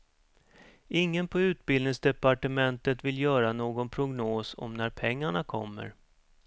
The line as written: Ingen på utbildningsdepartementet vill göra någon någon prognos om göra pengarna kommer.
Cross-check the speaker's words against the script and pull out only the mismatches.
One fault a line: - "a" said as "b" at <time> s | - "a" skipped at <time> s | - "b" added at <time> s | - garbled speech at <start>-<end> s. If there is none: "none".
- "någon" skipped at 3.9 s
- "göra" said as "när" at 4.7 s